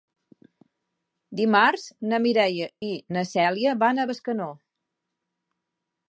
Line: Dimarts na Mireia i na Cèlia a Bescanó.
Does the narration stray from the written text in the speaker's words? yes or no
yes